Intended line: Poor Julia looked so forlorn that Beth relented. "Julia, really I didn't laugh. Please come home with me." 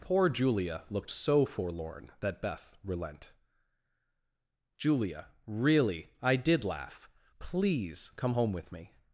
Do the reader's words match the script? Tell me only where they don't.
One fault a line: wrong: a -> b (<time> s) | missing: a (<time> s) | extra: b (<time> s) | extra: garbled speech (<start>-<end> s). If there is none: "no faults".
wrong: relented -> relent (2.8 s)
wrong: didn't -> did (6.4 s)